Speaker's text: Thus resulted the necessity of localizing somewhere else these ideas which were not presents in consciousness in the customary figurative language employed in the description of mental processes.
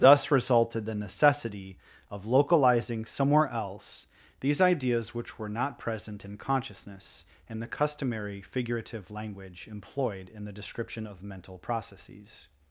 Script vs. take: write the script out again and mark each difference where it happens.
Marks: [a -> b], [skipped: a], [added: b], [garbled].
Thus resulted the necessity of localizing somewhere else these ideas which were not [presents -> present] in consciousness in the customary figurative language employed in the description of mental processes.